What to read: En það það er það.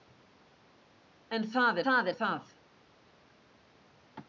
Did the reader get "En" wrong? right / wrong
right